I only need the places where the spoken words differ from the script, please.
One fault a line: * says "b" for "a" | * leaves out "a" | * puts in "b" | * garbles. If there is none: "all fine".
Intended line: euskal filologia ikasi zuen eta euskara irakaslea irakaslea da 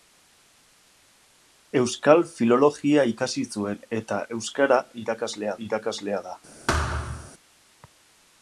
all fine